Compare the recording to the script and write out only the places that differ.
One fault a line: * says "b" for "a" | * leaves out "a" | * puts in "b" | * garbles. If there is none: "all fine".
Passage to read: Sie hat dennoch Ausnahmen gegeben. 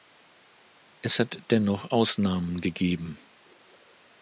* says "Es" for "Sie"